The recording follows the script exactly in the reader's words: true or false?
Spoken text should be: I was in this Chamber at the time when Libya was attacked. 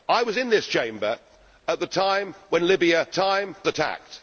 false